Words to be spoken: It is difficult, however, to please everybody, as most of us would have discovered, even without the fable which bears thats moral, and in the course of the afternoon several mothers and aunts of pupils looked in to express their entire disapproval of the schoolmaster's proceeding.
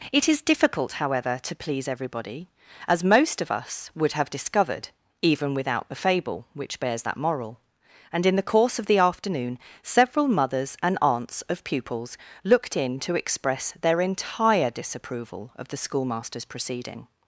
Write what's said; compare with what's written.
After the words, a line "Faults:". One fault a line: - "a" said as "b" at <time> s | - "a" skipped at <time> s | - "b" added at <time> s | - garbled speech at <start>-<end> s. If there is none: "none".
It is difficult, however, to please everybody, as most of us would have discovered, even without the fable which bears that moral, and in the course of the afternoon several mothers and aunts of pupils looked in to express their entire disapproval of the schoolmaster's proceeding.
Faults:
- "thats" said as "that" at 7.0 s